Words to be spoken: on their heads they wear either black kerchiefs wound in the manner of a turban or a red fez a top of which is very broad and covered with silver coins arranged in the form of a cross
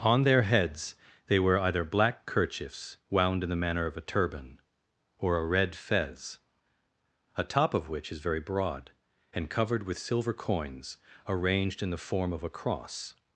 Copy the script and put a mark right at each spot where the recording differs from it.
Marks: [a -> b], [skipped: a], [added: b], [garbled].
on their heads they wear either black kerchiefs wound in the manner of a turban or a red fez a top of which is very broad and covered with silver coins arranged in the form of a cross